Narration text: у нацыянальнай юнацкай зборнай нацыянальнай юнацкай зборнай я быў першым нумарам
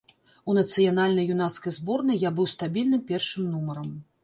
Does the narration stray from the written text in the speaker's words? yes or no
yes